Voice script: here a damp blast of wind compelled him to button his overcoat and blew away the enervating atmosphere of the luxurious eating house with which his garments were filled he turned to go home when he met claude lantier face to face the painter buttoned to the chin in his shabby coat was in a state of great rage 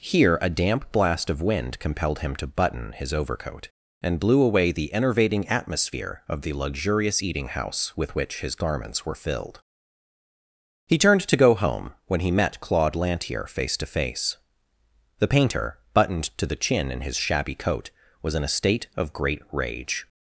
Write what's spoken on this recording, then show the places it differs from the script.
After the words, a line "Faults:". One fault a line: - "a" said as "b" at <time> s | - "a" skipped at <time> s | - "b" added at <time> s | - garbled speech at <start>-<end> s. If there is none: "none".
here a damp blast of wind compelled him to button his overcoat and blew away the enervating atmosphere of the luxurious eating house with which his garments were filled he turned to go home when he met claude lantier face to face the painter buttoned to the chin in his shabby coat was in a state of great rage
Faults:
none